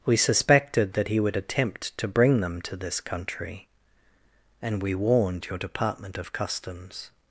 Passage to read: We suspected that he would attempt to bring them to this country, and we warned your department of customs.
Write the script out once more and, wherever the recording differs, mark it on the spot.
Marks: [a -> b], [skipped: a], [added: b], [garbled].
We suspected that he would attempt to bring them to this country, and we warned your department of customs.